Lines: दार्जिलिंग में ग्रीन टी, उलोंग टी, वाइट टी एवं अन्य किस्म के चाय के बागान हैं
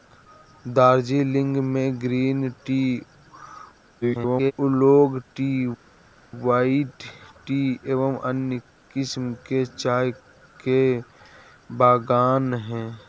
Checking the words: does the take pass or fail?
fail